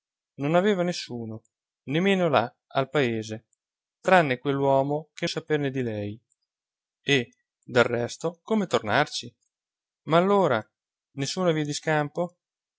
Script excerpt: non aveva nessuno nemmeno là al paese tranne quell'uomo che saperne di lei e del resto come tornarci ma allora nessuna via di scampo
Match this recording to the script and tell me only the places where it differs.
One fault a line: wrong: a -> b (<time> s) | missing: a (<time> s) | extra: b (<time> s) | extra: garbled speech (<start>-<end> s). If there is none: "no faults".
no faults